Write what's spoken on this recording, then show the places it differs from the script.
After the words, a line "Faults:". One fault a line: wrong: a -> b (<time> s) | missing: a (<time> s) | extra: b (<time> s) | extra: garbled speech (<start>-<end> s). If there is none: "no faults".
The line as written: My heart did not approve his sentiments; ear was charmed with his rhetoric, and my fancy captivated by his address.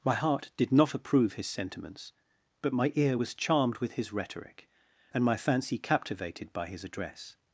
My heart did not approve his sentiments; but my ear was charmed with his rhetoric, and my fancy captivated by his address.
Faults:
extra: but my (2.6 s)